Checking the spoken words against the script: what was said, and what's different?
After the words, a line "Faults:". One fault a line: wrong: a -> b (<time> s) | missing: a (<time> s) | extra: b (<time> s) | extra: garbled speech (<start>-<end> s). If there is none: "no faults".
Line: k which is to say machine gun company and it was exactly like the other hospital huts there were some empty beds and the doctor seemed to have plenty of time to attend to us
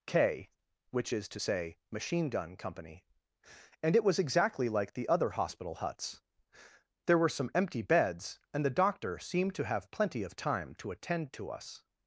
k which is to say machine gun company and it was exactly like the other hospital huts there were some empty beds and the doctor seemed to have plenty of time to attend to us
Faults:
no faults